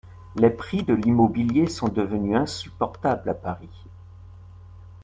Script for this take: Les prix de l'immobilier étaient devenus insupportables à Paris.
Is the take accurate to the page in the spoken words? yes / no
no